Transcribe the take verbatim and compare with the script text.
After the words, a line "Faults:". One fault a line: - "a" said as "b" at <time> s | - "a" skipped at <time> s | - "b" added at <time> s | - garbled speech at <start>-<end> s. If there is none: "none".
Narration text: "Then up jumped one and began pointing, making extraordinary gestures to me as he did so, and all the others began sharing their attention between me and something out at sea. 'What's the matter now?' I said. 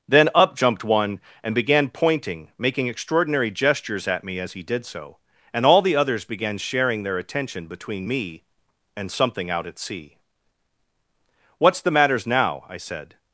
"Then up jumped one and began pointing, making extraordinary gestures at me as he did so, and all the others began sharing their attention between me and something out at sea. 'What's the matters now?' I said.
Faults:
- "to" said as "at" at 4.1 s
- "matter" said as "matters" at 11.9 s